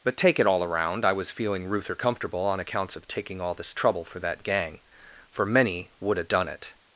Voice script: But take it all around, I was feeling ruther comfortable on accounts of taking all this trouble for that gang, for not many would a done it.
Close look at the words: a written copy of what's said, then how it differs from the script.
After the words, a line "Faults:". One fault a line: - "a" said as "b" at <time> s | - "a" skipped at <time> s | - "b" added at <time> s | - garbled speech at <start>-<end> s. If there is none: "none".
But take it all around, I was feeling ruther comfortable on accounts of taking all this trouble for that gang, for many would a done it.
Faults:
- "not" skipped at 5.5 s